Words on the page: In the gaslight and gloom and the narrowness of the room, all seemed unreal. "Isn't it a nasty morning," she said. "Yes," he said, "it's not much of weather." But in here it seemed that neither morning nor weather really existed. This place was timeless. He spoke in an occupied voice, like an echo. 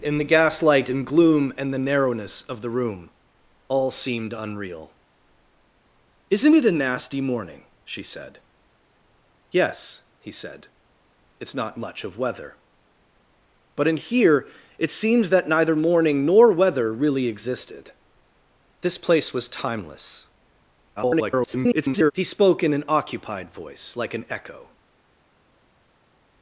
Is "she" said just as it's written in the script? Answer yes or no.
yes